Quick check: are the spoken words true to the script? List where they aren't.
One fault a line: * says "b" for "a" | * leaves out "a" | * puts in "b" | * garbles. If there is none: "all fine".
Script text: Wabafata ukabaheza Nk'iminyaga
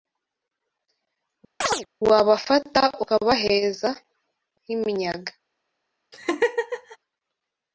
all fine